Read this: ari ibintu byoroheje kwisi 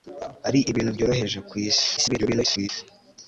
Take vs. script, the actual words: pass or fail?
fail